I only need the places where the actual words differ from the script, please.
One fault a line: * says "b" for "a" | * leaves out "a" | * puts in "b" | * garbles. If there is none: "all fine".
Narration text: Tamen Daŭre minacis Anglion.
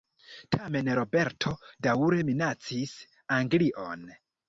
* puts in "Roberto"